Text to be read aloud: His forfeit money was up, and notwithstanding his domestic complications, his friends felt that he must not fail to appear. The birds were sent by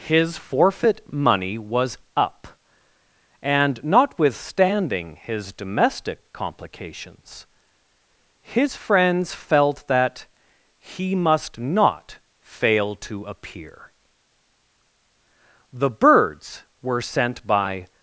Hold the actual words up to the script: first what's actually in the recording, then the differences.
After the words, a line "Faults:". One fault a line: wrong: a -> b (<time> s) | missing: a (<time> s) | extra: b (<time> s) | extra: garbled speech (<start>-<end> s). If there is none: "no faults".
His forfeit money was up, and notwithstanding his domestic complications, his friends felt that he must not fail to appear. The birds were sent by
Faults:
no faults